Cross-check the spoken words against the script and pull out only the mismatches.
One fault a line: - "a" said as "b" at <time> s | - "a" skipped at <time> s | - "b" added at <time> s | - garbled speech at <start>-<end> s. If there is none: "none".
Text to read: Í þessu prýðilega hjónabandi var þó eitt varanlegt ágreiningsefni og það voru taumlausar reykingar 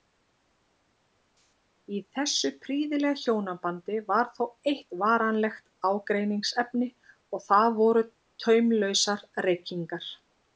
none